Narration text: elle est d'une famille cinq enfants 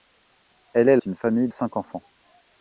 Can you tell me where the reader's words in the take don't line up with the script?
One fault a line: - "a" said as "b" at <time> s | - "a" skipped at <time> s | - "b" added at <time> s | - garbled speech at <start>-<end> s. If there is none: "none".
none